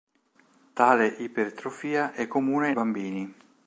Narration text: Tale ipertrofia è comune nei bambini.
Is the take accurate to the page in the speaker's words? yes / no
no